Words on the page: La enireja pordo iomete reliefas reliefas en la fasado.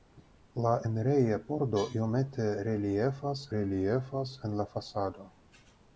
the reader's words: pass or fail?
pass